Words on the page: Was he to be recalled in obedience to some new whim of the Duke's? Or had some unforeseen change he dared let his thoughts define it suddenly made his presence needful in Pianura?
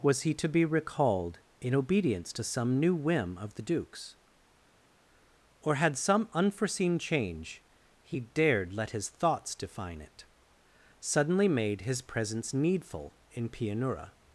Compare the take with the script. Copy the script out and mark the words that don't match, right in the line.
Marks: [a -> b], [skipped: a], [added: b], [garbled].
Was he to be recalled in obedience to some new whim of the Duke's? Or had some unforeseen change he dared let his thoughts define it suddenly made his presence needful in Pianura?